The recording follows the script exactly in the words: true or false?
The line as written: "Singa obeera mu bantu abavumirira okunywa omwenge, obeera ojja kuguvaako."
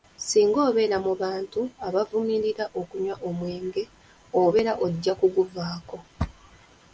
true